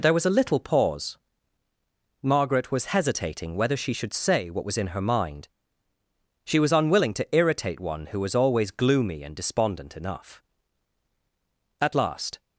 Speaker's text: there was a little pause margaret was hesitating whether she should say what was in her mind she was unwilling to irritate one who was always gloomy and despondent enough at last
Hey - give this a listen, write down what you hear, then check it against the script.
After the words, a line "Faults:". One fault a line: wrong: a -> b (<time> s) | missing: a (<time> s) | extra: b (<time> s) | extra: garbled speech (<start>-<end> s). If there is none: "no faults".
there was a little pause margaret was hesitating whether she should say what was in her mind she was unwilling to irritate one who was always gloomy and despondent enough at last
Faults:
no faults